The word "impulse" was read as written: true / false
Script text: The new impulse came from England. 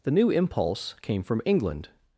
true